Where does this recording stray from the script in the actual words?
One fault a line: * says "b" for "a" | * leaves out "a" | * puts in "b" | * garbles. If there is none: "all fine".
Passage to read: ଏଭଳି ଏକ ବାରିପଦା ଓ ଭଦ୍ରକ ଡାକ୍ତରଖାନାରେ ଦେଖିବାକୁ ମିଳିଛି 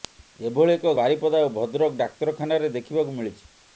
all fine